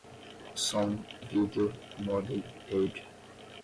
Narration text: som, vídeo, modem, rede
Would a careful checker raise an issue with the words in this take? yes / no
no